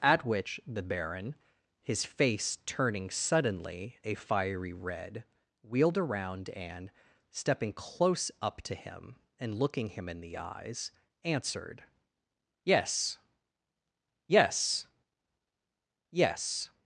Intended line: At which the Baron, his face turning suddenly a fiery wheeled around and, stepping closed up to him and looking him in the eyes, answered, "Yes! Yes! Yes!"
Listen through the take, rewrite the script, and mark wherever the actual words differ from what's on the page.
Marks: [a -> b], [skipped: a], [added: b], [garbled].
At which the Baron, his face turning suddenly a fiery [added: red] wheeled around and, stepping [closed -> close] up to him and looking him in the eyes, answered, "Yes! Yes! Yes!"